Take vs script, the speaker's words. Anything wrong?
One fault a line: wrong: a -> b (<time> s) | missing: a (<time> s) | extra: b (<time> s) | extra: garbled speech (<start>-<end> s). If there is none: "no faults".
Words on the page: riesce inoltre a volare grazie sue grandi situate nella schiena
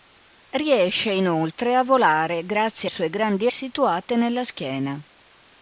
no faults